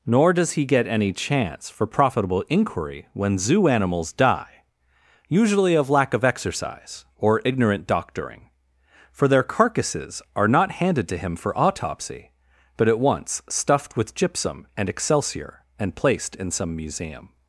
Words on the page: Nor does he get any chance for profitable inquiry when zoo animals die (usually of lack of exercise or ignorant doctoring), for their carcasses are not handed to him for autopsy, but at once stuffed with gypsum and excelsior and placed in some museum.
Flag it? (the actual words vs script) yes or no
no